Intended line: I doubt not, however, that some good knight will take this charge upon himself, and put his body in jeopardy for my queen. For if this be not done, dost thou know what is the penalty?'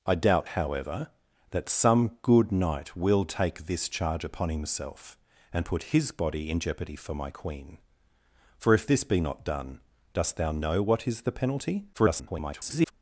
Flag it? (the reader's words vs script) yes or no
yes